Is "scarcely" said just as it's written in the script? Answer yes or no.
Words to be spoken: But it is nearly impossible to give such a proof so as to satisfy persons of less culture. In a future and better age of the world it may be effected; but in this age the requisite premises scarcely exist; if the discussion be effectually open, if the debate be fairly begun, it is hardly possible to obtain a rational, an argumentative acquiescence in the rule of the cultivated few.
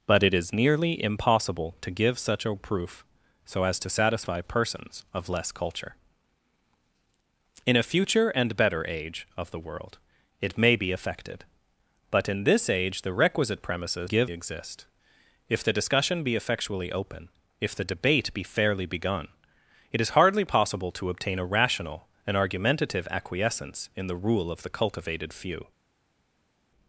no